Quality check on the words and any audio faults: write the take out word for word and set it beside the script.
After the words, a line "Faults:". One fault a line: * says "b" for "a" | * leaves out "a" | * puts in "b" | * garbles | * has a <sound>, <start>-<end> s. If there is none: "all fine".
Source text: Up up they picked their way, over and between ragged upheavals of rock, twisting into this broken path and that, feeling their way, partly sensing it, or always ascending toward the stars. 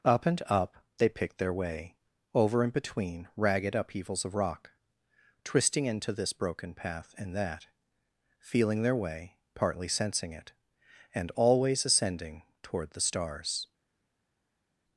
Up and up they picked their way, over and between ragged upheavals of rock, twisting into this broken path and that, feeling their way, partly sensing it, and always ascending toward the stars.
Faults:
* puts in "and"
* says "and" for "or"